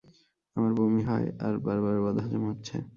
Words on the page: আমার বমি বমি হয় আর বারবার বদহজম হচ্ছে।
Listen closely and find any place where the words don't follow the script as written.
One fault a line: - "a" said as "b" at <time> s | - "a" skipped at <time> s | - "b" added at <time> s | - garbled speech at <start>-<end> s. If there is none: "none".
- "বমি" skipped at 1.0 s